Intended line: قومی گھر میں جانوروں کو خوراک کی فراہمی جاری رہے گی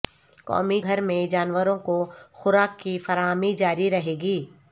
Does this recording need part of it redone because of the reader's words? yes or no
no